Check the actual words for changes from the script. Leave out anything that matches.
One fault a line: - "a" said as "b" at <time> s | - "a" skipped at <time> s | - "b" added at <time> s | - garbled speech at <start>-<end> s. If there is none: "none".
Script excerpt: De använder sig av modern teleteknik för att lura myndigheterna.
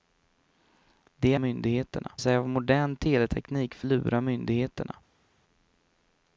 - "använder" said as "myndigheterna" at 1.4 s
- "att" skipped at 3.9 s